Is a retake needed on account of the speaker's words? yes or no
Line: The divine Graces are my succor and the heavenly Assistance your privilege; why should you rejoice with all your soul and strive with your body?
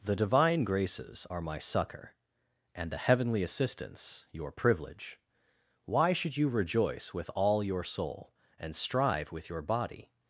no